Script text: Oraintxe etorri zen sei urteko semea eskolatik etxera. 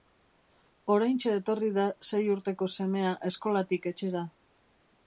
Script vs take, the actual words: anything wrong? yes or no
yes